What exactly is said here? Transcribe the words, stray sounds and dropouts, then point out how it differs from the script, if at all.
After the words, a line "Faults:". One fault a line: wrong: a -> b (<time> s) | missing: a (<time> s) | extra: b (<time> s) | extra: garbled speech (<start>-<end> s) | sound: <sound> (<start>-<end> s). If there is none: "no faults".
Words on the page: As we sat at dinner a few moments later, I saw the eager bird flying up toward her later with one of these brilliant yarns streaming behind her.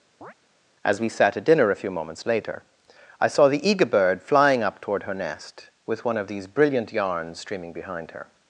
As we sat at dinner a few moments later, I saw the eager bird flying up toward her nest with one of these brilliant yarns streaming behind her.
Faults:
sound: chirp (0.2-0.3 s)
wrong: later -> nest (5.1 s)